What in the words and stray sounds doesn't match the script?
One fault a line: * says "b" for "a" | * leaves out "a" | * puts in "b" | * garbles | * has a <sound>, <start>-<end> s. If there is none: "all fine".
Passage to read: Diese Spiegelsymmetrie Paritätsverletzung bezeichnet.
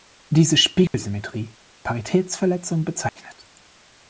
* has a dropout, 0.9-0.9 s
* has a dropout, 3.1-3.2 s